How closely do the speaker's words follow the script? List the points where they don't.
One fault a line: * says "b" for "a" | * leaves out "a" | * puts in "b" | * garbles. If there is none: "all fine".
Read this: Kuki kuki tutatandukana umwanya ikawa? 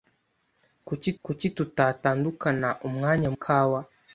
all fine